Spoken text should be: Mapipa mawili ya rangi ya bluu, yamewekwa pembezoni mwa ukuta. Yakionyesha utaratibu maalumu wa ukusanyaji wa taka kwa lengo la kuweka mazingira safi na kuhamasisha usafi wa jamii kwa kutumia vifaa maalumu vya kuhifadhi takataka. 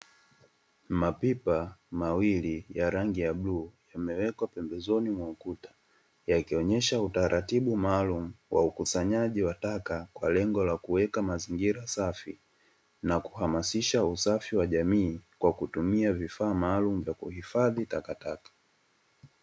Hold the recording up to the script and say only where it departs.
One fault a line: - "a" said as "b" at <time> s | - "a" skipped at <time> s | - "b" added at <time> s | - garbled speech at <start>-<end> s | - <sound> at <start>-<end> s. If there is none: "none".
none